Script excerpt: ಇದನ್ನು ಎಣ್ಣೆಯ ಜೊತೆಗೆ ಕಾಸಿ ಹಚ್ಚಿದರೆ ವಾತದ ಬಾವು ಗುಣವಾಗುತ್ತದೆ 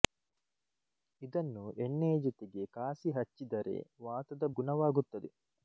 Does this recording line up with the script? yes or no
no